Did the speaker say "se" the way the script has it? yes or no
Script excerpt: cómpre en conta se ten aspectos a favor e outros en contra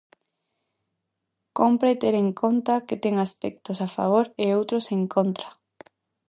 no